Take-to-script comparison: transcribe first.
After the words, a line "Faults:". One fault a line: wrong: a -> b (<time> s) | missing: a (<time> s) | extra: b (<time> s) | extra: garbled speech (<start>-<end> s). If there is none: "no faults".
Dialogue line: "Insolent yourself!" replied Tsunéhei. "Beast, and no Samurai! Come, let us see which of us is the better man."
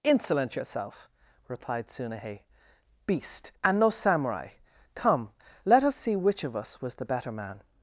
"Insolent yourself!" replied Tsunéhei. "Beast, and no Samurai! Come, let us see which of us was the better man."
Faults:
wrong: is -> was (6.8 s)